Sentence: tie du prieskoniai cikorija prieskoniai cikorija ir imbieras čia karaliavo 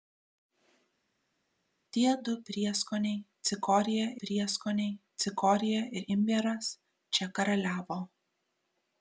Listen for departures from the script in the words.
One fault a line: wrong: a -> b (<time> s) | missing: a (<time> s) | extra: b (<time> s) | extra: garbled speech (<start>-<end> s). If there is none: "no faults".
no faults